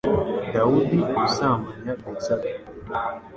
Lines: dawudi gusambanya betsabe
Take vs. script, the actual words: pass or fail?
pass